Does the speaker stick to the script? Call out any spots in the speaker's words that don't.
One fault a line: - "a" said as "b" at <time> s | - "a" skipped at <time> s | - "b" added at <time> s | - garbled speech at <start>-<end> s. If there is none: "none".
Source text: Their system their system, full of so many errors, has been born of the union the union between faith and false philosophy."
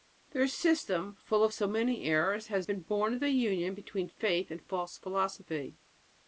- "their system" skipped at 1.1 s
- "the union" skipped at 3.7 s